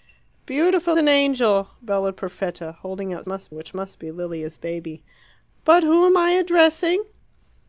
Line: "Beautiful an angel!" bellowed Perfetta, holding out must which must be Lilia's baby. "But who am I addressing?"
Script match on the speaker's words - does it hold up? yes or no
yes